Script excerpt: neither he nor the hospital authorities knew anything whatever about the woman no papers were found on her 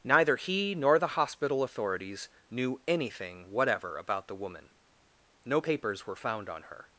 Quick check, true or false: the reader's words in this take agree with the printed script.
true